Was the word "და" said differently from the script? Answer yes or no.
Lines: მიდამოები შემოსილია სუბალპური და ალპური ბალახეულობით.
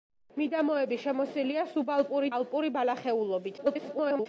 yes